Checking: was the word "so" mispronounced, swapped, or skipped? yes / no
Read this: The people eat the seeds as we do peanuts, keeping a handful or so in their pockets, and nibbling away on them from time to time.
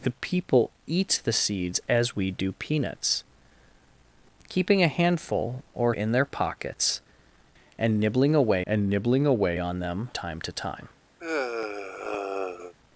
yes